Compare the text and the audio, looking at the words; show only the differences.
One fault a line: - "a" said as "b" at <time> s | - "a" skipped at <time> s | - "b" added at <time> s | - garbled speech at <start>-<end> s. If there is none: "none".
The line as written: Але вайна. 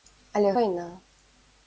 none